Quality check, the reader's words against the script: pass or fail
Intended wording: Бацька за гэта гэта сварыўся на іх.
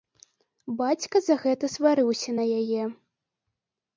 fail